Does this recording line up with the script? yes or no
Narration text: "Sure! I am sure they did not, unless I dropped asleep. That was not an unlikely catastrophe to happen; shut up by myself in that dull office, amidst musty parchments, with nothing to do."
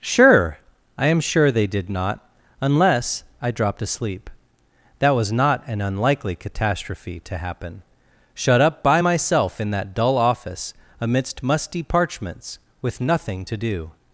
yes